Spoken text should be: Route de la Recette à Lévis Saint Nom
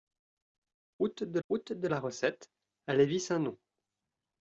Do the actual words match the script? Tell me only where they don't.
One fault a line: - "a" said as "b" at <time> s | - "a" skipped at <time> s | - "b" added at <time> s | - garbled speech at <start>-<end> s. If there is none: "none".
- "route de" added at 1.5 s